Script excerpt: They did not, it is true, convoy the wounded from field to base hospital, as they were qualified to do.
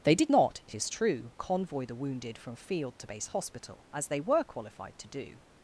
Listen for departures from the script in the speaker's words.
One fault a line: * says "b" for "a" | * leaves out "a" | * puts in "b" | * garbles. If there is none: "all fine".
all fine